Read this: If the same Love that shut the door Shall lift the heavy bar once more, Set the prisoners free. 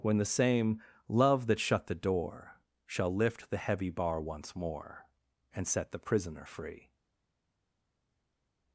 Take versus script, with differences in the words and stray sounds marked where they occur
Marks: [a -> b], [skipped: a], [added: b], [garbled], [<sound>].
[If -> When] the same Love that shut the door Shall lift the heavy bar once more, [added: And] Set the [prisoners -> prisoner] free.